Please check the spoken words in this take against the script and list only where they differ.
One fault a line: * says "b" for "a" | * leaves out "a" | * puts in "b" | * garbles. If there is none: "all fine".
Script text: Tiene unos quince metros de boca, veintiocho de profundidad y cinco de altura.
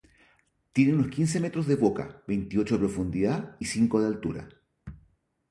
all fine